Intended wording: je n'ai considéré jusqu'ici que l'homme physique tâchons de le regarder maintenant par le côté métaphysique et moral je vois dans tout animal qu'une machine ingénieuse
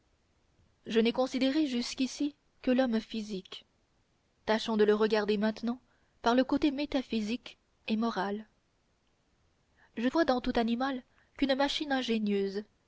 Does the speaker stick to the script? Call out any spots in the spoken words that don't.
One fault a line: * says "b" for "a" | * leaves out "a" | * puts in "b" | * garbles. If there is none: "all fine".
all fine